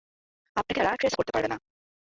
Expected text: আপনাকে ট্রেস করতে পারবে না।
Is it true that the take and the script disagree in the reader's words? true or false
true